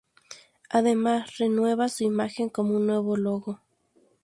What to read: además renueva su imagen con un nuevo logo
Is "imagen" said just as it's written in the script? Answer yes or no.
yes